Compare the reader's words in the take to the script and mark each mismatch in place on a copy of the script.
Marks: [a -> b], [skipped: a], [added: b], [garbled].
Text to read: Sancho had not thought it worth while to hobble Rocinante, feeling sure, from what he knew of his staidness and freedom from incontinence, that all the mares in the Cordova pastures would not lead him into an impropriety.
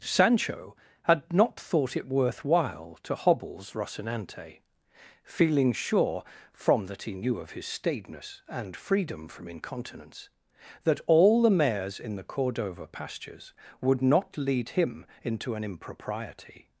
Sancho had not thought it worth while to [hobble -> hobbles] Rocinante, feeling sure, from [what -> that] he knew of his staidness and freedom from incontinence, that all the mares in the Cordova pastures would not lead him into an impropriety.